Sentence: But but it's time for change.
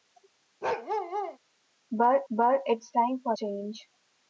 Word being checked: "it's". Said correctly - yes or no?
yes